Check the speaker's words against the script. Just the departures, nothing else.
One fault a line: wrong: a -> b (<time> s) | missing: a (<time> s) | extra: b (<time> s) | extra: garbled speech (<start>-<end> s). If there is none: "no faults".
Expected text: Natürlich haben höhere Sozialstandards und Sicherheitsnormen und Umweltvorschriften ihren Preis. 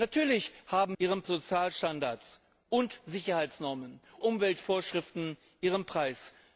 wrong: höhere -> ihren (1.0 s)
missing: und (4.0 s)